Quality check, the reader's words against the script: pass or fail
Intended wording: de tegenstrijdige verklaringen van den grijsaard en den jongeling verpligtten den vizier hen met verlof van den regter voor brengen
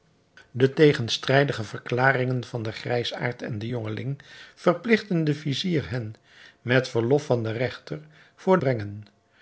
pass